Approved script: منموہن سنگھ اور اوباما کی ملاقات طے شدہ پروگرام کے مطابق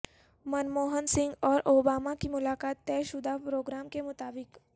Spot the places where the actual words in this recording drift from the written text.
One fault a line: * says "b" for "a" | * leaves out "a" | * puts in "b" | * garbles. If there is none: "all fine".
all fine